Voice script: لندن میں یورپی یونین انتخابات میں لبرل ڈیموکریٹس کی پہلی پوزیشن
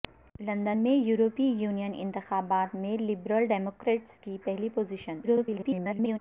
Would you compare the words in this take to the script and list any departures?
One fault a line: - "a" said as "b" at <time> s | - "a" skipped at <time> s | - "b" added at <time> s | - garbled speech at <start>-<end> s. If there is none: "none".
- garbled speech at 5.2-6.2 s